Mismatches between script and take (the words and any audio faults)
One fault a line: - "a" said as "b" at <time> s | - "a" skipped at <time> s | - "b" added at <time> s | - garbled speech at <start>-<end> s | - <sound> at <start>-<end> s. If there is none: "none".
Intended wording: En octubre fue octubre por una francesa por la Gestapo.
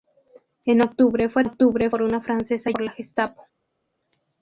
none